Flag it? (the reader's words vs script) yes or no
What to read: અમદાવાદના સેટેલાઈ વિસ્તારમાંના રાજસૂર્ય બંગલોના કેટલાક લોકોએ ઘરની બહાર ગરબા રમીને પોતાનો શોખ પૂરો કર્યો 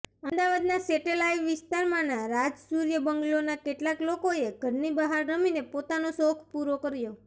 yes